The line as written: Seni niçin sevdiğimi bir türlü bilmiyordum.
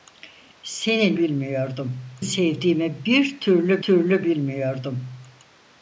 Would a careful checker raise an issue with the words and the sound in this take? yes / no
yes